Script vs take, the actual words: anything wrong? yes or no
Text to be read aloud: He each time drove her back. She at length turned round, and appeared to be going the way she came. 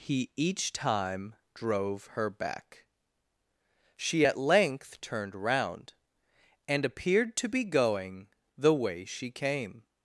no